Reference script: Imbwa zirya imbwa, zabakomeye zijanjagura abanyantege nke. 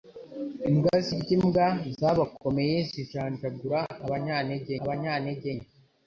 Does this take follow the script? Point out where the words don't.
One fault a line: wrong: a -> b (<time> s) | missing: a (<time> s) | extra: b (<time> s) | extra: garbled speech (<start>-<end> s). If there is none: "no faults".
extra: abanyantege (4.8 s)